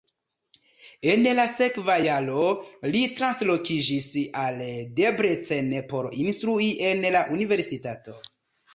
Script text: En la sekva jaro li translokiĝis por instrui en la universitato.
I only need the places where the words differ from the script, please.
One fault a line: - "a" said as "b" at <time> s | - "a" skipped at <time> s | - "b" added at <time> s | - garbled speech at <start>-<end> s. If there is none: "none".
- "al Debrecen" added at 4.5 s